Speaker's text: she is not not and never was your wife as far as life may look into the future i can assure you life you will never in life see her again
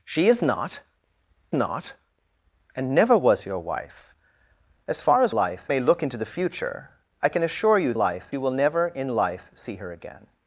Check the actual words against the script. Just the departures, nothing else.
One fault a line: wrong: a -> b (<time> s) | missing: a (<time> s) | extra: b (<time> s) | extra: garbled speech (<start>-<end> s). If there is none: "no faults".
no faults